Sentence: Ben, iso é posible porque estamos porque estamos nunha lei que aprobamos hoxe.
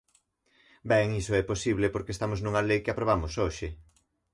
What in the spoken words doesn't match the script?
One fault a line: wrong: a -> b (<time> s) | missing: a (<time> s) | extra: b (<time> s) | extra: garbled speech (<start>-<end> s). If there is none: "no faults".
missing: porque estamos (2.4 s)